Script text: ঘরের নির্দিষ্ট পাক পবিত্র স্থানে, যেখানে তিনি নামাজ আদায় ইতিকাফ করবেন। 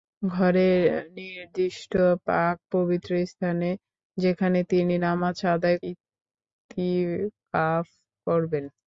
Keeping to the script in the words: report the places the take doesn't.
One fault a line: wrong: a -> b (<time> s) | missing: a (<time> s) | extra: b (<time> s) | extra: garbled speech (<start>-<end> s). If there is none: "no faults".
no faults